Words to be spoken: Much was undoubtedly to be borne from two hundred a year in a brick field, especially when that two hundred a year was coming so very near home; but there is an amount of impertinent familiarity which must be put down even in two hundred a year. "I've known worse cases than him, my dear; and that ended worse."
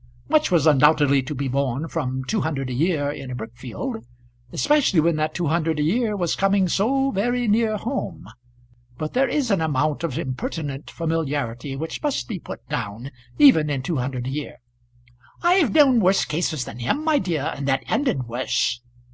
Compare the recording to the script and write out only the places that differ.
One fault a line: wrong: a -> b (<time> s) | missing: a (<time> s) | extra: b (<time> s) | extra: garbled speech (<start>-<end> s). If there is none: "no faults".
no faults